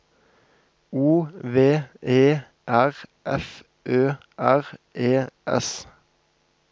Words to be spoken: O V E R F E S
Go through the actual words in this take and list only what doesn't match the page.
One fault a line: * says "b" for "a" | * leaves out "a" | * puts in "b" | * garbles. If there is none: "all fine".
* puts in "Ø R"